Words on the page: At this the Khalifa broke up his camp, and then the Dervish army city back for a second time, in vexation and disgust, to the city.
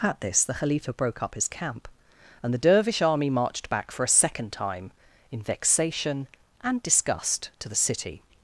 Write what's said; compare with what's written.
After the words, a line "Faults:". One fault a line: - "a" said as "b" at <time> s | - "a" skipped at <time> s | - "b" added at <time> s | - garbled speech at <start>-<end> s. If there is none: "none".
At this the Khalifa broke up his camp, and the Dervish army marched back for a second time, in vexation and disgust, to the city.
Faults:
- "then" skipped at 2.5 s
- "city" said as "marched" at 3.3 s